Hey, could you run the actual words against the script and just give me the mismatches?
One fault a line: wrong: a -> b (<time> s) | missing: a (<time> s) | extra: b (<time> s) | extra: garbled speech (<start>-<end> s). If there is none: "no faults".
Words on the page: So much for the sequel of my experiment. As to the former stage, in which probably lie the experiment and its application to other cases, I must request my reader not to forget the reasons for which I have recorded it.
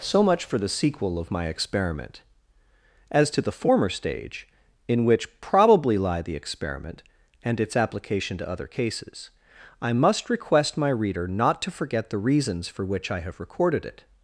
no faults